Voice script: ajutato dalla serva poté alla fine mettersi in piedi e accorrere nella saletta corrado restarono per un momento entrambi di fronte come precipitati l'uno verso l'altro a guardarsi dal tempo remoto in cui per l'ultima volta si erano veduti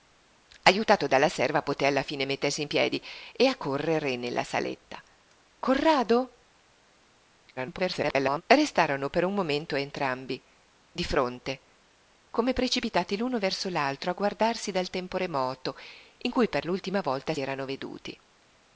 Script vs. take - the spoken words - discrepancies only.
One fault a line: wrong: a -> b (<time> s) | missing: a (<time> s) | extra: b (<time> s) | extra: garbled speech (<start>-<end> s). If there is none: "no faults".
extra: garbled speech (7.6-8.4 s)
missing: si (17.3 s)